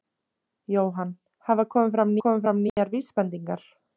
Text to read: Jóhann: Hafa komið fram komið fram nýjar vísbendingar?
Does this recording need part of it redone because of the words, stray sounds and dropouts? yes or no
yes